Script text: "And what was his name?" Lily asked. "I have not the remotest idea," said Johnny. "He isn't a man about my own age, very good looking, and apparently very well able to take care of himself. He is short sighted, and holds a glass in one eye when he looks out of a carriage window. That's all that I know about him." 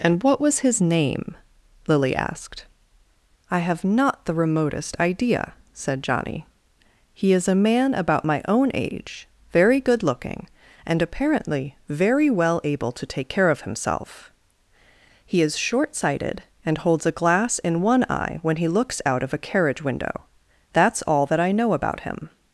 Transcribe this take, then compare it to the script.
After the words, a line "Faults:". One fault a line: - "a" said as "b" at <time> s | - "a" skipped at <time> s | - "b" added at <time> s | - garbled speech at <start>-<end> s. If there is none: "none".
"And what was his name?" Lily asked. "I have not the remotest idea," said Johnny. "He is a man about my own age, very good looking, and apparently very well able to take care of himself. He is short sighted, and holds a glass in one eye when he looks out of a carriage window. That's all that I know about him."
Faults:
- "isn't" said as "is" at 7.3 s